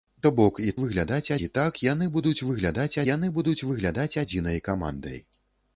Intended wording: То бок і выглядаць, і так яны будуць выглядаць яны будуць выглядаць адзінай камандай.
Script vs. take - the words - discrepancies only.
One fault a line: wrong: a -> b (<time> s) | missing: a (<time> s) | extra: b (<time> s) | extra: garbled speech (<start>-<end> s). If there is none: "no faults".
no faults